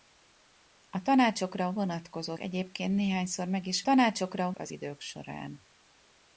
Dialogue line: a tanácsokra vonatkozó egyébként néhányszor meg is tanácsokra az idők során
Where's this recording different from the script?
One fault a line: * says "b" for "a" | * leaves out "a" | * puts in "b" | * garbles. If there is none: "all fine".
all fine